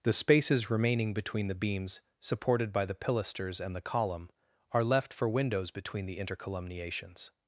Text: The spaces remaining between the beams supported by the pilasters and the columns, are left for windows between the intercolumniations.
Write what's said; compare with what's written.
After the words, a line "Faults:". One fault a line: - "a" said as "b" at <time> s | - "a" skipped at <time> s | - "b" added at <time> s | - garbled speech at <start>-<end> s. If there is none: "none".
The spaces remaining between the beams supported by the pilasters and the column, are left for windows between the intercolumniations.
Faults:
- "columns" said as "column" at 3.8 s